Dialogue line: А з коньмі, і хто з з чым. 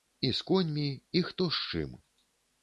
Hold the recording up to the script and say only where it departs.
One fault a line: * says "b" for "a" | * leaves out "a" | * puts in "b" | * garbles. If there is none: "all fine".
* says "І" for "А"
* leaves out "з"